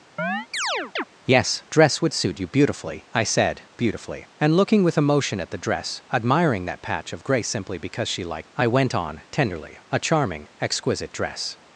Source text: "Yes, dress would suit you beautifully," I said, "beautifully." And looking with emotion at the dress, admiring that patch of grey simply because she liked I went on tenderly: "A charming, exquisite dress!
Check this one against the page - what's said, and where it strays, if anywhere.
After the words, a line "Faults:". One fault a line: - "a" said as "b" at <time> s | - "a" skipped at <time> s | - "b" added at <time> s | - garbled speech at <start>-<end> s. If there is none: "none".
"Yes, dress would suit you beautifully," I said, "beautifully." And looking with emotion at the dress, admiring that patch of grey simply because she liked I went on tenderly: "A charming, exquisite dress!
Faults:
none